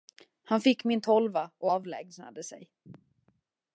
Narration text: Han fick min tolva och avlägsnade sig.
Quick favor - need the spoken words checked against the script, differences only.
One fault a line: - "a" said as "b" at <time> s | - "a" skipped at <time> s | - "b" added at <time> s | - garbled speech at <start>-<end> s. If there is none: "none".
none